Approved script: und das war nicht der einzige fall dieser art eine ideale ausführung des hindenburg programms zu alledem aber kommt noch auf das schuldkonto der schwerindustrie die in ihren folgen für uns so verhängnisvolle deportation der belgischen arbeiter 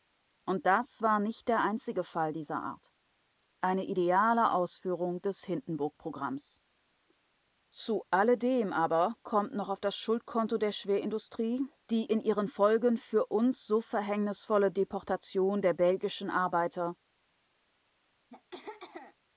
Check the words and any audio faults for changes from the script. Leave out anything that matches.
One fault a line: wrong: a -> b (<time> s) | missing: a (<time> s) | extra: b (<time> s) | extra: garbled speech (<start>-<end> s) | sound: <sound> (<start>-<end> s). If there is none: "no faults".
sound: throat clearing (18.3-19.2 s)